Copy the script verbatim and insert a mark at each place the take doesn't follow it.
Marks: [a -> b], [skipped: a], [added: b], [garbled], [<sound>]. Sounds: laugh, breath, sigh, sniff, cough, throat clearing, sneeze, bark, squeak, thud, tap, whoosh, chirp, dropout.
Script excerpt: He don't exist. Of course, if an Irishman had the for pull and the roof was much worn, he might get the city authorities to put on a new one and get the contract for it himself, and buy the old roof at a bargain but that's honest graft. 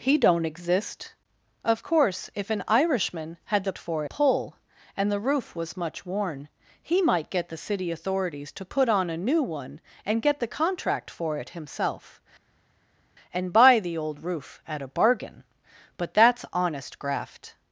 He don't exist. Of course, if an Irishman had the for pull and the roof was much worn, he might get the city authorities to put on a new one and get the contract for it himself, and buy the old roof at a bargain but that's honest graft.